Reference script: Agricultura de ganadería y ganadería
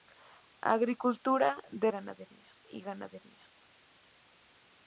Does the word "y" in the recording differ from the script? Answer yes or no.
no